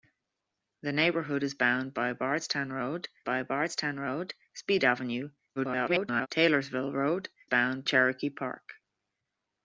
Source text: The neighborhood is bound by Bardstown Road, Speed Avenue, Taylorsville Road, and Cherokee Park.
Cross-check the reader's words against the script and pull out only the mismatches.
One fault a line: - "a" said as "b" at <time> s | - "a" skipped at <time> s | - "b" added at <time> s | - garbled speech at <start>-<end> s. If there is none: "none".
- "by Bardstown Road" added at 3.2 s
- garbled speech at 5.6-6.3 s
- "and" said as "bound" at 7.4 s